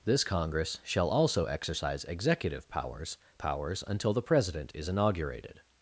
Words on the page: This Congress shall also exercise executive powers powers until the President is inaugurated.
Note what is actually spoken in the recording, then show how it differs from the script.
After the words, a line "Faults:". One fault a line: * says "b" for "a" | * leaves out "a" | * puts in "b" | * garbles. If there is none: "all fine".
This Congress shall also exercise executive powers powers until the President is inaugurated.
Faults:
all fine